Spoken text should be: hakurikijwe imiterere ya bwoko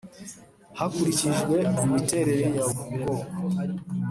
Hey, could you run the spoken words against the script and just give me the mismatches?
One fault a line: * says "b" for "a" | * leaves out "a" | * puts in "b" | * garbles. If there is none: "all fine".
all fine